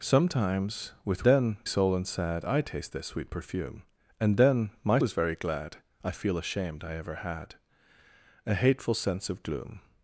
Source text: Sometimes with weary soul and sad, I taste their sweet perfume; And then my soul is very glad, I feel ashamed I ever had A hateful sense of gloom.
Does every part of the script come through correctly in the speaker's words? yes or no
no